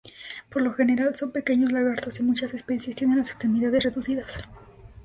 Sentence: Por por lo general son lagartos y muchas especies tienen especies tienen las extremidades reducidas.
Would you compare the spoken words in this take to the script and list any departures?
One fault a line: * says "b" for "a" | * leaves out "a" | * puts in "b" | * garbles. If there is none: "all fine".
* leaves out "por"
* puts in "pequeños"
* leaves out "especies tienen"